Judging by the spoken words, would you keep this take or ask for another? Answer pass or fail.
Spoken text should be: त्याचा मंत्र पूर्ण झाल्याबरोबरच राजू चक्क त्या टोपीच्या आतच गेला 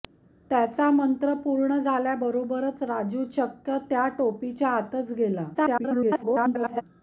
fail